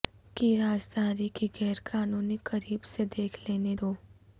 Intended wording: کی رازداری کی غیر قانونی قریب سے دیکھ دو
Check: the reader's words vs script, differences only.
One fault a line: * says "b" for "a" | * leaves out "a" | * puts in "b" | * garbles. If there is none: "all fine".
* puts in "لینے"